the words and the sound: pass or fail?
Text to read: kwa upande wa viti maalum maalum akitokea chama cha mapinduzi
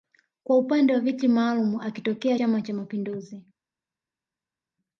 fail